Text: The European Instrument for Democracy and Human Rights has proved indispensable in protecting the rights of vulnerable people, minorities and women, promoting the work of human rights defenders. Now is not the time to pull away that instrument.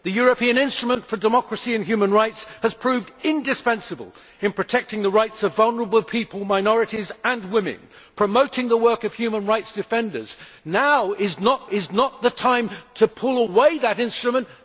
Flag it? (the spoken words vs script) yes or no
yes